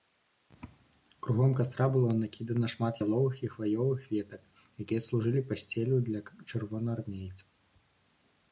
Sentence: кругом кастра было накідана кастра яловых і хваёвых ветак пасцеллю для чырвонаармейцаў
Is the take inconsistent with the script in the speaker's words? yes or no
yes